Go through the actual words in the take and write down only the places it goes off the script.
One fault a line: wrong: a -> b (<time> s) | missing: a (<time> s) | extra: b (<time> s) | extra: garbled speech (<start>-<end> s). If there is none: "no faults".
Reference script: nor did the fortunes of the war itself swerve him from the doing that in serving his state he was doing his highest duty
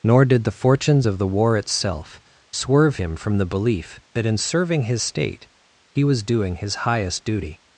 wrong: doing -> belief (3.5 s)